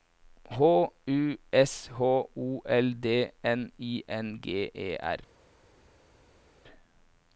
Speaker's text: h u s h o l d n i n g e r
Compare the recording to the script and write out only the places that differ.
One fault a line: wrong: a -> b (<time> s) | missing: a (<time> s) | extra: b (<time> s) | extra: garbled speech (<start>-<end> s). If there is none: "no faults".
no faults